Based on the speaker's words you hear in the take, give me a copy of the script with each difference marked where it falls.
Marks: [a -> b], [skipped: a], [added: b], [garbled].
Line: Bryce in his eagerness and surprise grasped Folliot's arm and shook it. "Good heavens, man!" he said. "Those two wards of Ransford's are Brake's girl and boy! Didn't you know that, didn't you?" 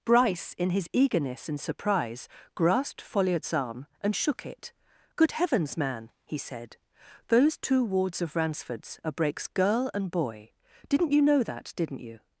Bryce in his eagerness and surprise grasped Folliot's arm and shook it. "Good heavens, man!" he said. "Those two wards of Ransford's are Brake's girl and boy! Didn't you know that, didn't you?"